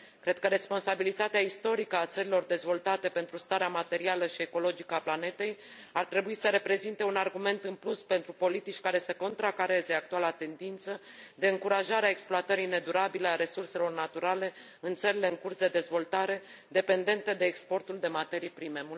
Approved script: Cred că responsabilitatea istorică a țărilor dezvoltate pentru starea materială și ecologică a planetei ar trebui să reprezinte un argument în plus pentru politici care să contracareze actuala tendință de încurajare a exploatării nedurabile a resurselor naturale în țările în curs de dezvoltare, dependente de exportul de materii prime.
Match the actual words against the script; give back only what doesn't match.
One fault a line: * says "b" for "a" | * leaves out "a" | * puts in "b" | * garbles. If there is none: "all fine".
all fine